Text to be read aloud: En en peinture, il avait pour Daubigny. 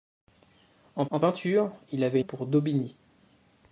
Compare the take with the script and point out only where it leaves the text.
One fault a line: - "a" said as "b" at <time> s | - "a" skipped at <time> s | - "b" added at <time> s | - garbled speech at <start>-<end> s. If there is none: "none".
none